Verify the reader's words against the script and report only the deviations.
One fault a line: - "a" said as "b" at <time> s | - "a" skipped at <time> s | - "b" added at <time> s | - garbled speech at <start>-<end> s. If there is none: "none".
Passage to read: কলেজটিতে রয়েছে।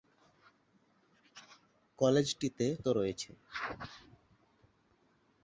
none